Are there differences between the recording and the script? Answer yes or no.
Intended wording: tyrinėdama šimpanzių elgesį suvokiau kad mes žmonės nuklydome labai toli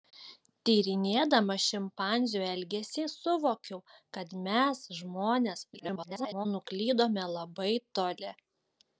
yes